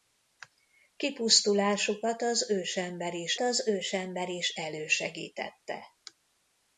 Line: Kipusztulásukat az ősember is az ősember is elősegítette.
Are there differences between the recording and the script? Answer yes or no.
no